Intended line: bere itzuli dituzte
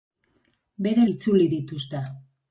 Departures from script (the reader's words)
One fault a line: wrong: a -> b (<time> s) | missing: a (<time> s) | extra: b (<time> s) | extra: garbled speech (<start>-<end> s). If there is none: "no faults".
no faults